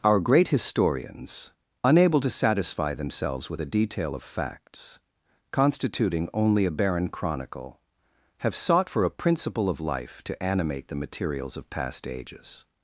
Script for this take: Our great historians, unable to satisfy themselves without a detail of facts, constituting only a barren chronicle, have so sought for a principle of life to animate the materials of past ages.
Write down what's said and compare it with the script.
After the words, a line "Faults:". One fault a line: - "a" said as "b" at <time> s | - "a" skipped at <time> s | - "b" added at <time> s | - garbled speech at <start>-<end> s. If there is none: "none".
Our great historians, unable to satisfy themselves with a detail of facts, constituting only a barren chronicle, have sought for a principle of life to animate the materials of past ages.
Faults:
- "without" said as "with" at 3.5 s
- "so" skipped at 8.5 s